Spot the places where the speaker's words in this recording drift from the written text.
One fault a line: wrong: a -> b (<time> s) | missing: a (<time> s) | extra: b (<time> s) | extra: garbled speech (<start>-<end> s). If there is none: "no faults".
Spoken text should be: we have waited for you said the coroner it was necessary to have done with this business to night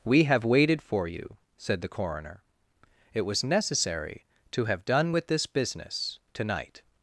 no faults